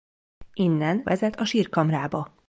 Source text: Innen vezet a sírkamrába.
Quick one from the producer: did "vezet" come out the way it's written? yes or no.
yes